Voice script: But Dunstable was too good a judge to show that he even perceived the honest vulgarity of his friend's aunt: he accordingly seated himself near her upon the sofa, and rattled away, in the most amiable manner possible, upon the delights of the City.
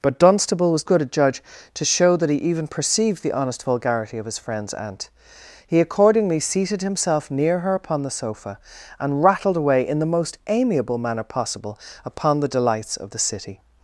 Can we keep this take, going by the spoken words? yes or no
no